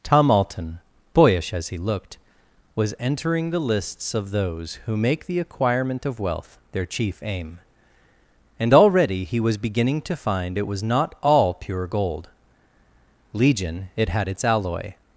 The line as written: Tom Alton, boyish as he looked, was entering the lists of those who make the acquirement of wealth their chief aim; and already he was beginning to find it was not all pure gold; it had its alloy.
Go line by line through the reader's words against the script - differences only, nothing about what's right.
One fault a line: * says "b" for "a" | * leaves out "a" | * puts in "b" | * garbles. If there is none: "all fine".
* puts in "legion"